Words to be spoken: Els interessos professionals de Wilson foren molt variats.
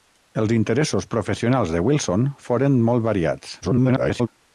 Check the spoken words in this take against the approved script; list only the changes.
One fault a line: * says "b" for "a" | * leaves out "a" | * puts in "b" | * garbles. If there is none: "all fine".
* garbles